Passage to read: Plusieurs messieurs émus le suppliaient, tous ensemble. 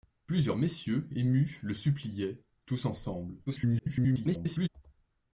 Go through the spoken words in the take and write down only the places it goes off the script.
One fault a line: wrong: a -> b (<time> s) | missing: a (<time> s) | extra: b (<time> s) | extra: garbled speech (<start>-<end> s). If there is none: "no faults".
extra: garbled speech (3.5-4.7 s)